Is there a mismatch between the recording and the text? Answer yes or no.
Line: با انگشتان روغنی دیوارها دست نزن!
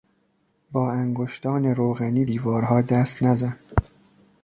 no